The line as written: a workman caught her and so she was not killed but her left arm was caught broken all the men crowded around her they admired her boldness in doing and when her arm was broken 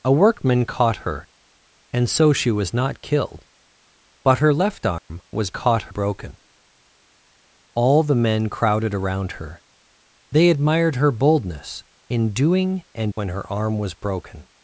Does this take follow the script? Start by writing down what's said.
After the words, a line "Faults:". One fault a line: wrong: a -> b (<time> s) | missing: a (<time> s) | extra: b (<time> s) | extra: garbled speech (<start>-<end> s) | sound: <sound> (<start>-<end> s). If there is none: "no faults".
a workman caught her and so she was not killed but her left arm was caught broken all the men crowded around her they admired her boldness in doing and when her arm was broken
Faults:
sound: dropout (5.0-5.1 s)